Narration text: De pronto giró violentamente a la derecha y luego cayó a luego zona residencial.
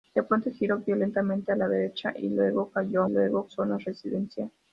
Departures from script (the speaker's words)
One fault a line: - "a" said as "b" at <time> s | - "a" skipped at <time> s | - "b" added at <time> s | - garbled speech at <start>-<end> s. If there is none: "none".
none